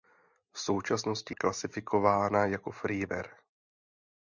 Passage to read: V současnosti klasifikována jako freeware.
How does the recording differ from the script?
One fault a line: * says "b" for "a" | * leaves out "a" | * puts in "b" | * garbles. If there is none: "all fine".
all fine